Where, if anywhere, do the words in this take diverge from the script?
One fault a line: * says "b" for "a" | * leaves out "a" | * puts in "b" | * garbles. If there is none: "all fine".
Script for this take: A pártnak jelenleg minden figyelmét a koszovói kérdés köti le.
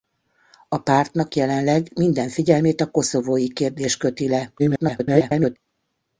* garbles